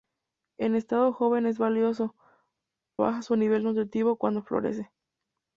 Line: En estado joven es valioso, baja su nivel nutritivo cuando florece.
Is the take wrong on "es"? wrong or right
right